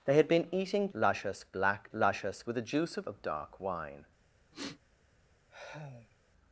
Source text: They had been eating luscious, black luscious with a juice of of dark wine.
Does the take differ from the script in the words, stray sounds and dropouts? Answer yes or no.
yes